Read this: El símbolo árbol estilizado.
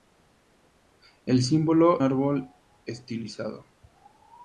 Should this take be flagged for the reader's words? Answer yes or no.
no